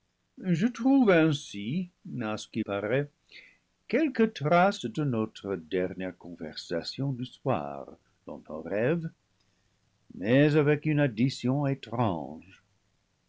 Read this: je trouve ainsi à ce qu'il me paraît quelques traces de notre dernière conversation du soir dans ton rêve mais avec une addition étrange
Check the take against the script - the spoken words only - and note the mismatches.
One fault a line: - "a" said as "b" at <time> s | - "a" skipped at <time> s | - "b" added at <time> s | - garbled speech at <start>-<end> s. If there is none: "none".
- "me" skipped at 2.6 s